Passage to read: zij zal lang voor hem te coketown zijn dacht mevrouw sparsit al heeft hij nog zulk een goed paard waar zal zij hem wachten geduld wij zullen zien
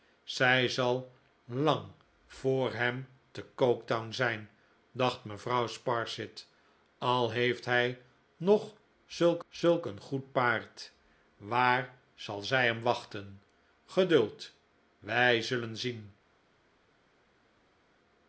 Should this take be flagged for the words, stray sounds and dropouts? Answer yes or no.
yes